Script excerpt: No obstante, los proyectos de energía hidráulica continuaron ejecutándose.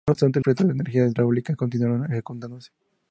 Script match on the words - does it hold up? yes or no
no